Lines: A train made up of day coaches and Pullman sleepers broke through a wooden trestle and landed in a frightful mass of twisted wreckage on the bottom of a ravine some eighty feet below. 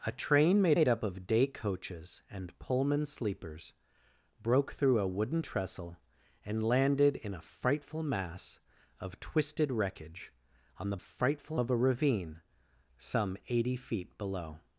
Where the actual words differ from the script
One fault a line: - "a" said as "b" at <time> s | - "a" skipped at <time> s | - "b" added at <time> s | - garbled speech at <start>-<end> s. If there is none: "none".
- "made" added at 0.7 s
- "bottom" said as "frightful" at 11.0 s